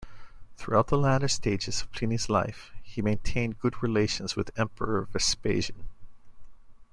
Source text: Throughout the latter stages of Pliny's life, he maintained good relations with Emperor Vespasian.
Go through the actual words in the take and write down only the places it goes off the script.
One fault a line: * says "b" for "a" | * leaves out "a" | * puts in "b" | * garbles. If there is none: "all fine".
all fine